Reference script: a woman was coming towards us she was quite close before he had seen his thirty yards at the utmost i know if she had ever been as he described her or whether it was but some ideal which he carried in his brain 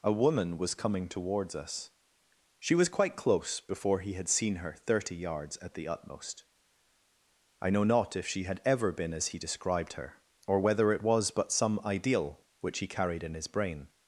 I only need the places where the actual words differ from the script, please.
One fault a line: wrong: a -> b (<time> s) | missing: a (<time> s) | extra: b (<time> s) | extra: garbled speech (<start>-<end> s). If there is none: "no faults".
wrong: his -> her (4.5 s)
extra: not (7.8 s)